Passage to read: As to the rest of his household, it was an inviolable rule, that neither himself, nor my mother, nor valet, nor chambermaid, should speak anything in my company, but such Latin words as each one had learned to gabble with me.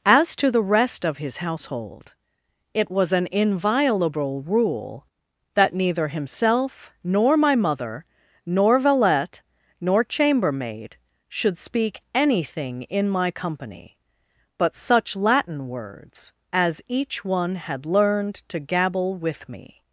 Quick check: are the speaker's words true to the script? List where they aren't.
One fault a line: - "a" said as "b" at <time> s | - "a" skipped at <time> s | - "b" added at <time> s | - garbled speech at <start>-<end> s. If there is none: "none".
none